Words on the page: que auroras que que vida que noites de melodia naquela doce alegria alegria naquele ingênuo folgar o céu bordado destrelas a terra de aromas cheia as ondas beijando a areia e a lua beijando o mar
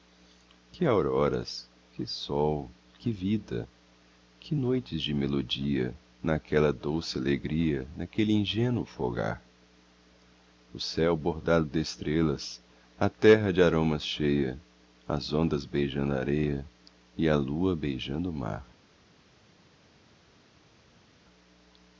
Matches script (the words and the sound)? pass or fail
fail